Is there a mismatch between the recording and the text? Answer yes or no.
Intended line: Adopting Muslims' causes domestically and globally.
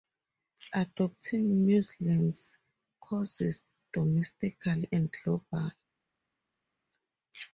no